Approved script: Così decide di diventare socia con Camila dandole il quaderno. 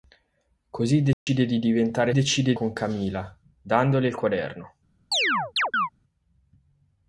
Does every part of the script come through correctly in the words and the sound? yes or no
no